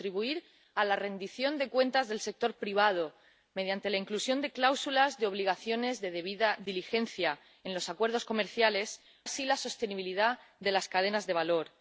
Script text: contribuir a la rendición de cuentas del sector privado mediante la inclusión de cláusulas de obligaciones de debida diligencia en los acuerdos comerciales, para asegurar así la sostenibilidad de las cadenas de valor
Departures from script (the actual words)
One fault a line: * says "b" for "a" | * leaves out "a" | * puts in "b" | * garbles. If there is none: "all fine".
* leaves out "para asegurar"